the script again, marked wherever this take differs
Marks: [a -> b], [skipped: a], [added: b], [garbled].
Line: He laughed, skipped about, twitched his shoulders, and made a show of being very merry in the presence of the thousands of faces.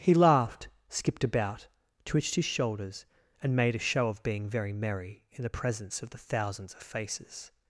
He laughed, skipped about, twitched his shoulders, and made a show of being very merry in the presence of the thousands of faces.